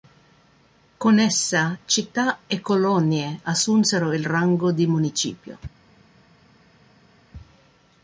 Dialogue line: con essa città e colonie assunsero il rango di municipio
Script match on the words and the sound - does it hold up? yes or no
yes